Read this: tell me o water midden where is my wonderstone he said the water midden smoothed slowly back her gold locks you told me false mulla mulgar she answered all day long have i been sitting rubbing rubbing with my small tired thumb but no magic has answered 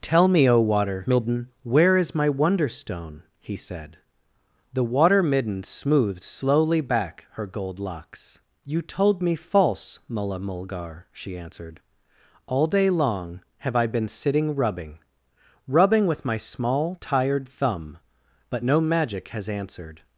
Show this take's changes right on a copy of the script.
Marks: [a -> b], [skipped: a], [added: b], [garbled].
tell me o water midden where is my wonderstone he said the water midden smoothed slowly back her gold locks you told me false mulla mulgar she answered all day long have i been sitting rubbing rubbing with my small tired thumb but no magic has answered